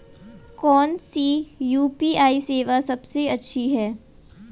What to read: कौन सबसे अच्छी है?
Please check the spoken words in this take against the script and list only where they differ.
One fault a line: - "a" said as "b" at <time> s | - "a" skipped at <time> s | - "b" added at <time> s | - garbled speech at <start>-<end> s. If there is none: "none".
- "सी यू.पी.आई सेवा" added at 1.0 s